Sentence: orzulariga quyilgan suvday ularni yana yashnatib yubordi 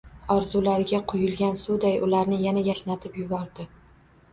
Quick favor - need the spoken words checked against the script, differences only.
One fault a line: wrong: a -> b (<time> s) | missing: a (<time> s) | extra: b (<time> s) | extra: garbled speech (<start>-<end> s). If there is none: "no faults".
no faults